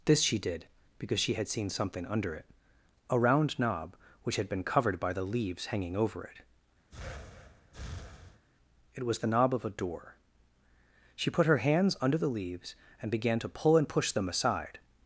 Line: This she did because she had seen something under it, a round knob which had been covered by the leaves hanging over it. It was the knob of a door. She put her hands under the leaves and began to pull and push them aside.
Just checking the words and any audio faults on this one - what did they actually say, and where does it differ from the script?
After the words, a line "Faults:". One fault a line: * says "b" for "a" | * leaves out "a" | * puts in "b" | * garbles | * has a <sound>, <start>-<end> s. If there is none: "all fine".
This she did because she had seen something under it, a round knob which had been covered by the leaves hanging over it. It was the knob of a door. She put her hands under the leaves and began to pull and push them aside.
Faults:
* has a breath, 6.9-8.4 s